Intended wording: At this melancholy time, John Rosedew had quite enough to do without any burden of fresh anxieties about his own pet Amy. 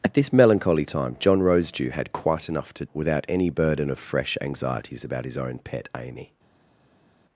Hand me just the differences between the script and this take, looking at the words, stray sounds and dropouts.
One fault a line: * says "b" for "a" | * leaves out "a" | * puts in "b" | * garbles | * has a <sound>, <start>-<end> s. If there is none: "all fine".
* leaves out "do"